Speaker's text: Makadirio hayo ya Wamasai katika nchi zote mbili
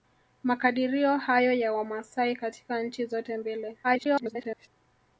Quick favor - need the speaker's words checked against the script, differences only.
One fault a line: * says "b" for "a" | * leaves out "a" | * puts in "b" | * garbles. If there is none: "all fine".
* garbles